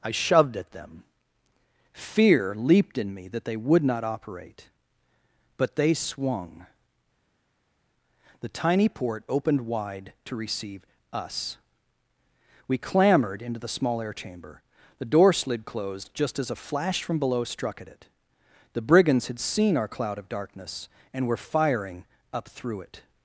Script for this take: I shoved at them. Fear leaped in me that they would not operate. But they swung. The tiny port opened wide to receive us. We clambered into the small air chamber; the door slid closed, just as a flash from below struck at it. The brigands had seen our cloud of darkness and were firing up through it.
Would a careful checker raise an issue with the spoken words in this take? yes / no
no